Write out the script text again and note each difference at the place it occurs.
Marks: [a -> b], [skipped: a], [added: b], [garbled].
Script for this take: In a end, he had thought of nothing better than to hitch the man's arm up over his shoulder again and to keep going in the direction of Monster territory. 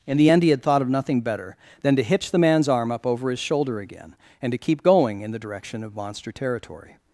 In [a -> the] end, he had thought of nothing better than to hitch the man's arm up over his shoulder again and to keep going in the direction of Monster territory.